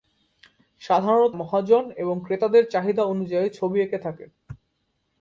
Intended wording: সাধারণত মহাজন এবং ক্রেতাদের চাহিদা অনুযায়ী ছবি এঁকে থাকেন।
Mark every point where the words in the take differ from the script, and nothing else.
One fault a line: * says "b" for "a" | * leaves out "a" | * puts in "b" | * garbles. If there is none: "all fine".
all fine